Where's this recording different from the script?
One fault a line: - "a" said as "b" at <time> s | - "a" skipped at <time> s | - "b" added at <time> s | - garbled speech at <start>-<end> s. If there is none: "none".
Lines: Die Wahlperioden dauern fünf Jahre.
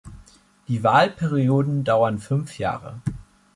none